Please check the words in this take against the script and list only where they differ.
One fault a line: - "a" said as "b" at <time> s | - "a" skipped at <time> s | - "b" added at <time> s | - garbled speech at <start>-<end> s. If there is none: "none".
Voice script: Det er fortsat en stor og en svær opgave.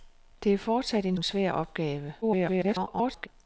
- "stor og" skipped at 1.2 s
- garbled speech at 2.2-3.3 s